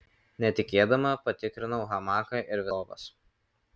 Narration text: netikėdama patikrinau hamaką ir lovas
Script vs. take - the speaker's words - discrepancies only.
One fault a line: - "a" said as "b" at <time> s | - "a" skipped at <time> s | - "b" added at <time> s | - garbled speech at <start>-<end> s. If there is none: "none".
none